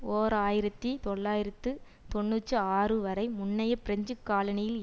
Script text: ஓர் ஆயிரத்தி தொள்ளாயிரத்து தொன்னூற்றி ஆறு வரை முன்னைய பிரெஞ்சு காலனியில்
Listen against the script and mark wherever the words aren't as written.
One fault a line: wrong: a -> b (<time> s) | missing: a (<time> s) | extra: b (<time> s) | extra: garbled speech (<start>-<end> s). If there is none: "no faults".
no faults